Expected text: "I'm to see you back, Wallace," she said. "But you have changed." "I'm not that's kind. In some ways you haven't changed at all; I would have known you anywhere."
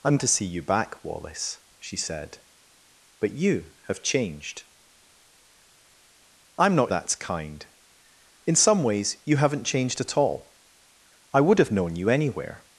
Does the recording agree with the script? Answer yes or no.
yes